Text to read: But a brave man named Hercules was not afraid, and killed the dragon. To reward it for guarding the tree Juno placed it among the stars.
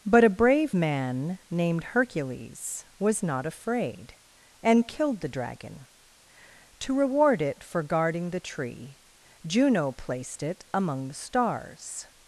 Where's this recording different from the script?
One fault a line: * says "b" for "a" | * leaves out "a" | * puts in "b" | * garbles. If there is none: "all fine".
all fine